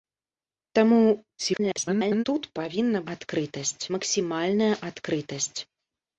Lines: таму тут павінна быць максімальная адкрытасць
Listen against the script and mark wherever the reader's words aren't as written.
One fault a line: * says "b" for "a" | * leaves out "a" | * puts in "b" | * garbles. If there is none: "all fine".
* garbles
* says "адкрытасць" for "быць"